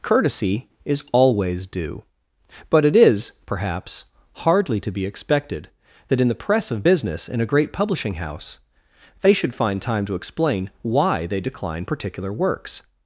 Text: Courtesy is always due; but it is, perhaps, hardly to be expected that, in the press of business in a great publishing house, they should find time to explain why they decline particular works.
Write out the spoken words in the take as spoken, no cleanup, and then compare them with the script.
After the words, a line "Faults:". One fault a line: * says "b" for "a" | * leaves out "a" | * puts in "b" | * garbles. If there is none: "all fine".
Courtesy is always due; but it is, perhaps, hardly to be expected that, in the press of business in a great publishing house, they should find time to explain why they decline particular works.
Faults:
all fine